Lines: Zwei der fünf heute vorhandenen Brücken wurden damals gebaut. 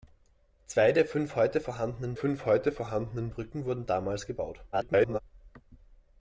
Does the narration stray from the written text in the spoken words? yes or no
yes